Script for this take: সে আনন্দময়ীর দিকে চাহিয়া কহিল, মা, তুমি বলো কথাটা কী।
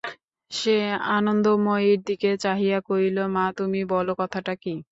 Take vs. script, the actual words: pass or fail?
pass